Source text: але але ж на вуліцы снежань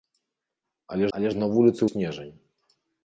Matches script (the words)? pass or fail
pass